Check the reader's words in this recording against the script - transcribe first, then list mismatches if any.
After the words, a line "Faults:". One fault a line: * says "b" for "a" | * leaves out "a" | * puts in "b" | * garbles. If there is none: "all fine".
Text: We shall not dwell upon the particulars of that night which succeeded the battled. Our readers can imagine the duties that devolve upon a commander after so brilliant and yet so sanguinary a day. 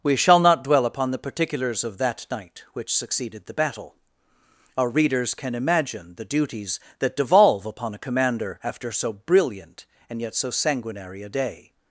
We shall not dwell upon the particulars of that night which succeeded the battle. Our readers can imagine the duties that devolve upon a commander after so brilliant and yet so sanguinary a day.
Faults:
* says "battle" for "battled"